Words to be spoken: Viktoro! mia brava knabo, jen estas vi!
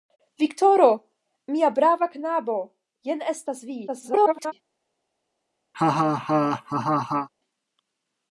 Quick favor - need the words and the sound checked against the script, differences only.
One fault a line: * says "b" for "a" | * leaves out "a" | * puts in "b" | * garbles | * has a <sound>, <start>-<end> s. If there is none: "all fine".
* garbles
* has a laugh, 5.7-7.3 s